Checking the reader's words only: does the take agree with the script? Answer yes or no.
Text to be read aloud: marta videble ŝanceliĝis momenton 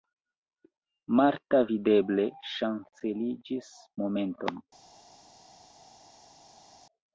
yes